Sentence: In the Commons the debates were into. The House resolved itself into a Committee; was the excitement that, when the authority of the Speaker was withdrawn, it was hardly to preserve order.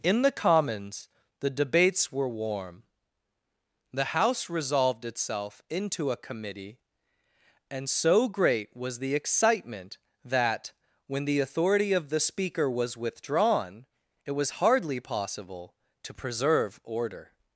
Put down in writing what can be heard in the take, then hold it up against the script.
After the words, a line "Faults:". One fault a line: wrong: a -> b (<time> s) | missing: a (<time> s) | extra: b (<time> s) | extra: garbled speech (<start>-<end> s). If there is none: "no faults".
In the Commons the debates were warm. The House resolved itself into a Committee; and so great was the excitement that, when the authority of the Speaker was withdrawn, it was hardly possible to preserve order.
Faults:
wrong: into -> warm (2.3 s)
extra: and so great (7.7 s)
extra: possible (15.0 s)